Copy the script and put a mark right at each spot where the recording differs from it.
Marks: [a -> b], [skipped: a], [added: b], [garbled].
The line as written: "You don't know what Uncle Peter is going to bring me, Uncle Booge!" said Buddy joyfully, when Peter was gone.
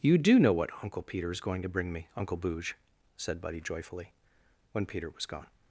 "You [don't -> do] know what Uncle Peter is going to bring me, Uncle Booge!" said Buddy joyfully, when Peter was gone.